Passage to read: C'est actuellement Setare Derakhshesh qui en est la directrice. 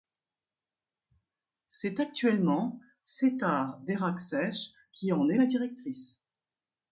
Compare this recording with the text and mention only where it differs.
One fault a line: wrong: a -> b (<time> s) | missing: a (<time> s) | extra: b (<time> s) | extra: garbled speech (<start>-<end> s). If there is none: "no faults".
no faults